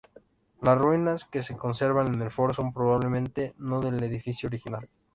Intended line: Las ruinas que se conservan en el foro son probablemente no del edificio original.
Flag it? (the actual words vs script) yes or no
no